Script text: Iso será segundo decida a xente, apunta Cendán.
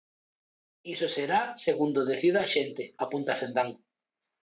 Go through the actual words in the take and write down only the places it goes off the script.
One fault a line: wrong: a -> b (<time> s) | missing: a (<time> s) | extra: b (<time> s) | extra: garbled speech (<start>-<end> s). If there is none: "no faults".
no faults